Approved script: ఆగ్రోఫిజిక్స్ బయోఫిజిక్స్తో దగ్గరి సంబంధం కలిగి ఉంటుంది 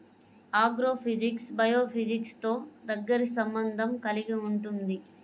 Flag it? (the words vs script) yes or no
no